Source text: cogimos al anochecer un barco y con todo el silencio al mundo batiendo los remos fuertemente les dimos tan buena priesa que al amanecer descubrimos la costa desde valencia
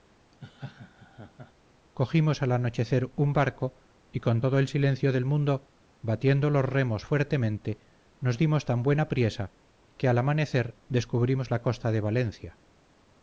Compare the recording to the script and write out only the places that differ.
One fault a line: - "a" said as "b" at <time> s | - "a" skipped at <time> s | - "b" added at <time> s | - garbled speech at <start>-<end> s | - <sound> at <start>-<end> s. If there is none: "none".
- laugh at 0.3-1.5 s
- "al" said as "del" at 5.1 s
- "les" said as "nos" at 8.2 s
- "desde" said as "de" at 11.9 s